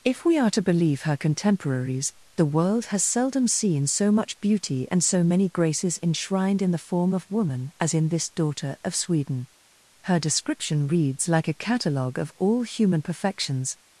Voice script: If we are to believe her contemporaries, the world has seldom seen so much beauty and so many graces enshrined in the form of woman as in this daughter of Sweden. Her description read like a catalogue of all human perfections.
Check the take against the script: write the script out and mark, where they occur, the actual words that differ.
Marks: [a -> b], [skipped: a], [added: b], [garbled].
If we are to believe her contemporaries, the world has seldom seen so much beauty and so many graces enshrined in the form of woman as in this daughter of Sweden. Her description [read -> reads] like a catalogue of all human perfections.